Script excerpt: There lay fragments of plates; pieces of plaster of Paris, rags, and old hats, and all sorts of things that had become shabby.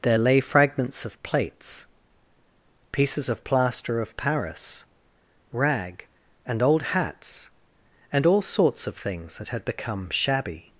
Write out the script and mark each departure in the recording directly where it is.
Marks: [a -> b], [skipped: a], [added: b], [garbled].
There lay fragments of plates; pieces of plaster of Paris, [rags, -> rag] and old hats, and all sorts of things that had become shabby.